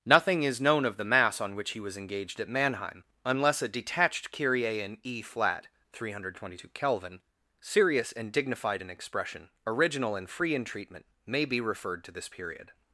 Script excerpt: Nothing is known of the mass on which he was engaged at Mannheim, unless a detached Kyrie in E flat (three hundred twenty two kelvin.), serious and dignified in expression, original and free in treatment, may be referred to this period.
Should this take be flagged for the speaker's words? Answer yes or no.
no